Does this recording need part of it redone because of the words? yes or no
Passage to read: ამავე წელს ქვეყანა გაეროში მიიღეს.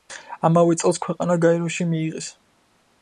no